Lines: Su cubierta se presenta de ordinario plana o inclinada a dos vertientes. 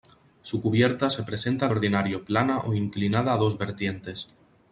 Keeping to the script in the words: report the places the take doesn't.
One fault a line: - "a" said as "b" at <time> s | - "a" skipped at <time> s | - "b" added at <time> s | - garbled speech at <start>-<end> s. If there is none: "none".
- "de" skipped at 1.7 s